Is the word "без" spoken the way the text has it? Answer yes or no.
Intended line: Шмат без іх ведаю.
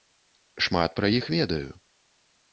no